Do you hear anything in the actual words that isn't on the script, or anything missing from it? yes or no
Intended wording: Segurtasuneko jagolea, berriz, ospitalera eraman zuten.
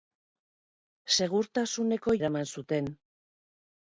yes